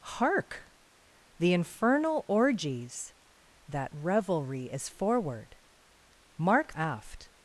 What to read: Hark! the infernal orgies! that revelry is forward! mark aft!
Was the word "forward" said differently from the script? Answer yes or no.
no